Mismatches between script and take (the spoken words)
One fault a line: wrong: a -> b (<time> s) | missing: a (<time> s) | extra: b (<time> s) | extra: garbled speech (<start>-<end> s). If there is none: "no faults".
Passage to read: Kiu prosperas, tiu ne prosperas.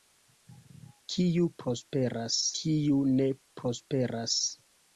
no faults